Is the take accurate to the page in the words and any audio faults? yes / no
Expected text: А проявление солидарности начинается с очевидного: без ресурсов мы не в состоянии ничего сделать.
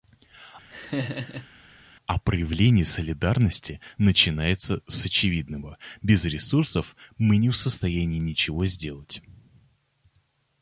no